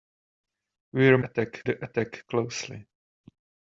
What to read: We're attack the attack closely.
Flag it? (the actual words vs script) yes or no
no